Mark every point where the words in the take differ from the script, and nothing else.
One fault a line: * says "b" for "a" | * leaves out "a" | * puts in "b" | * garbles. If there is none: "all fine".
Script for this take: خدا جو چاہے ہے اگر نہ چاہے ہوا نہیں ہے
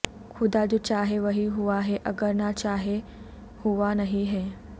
* puts in "وہی ہوا"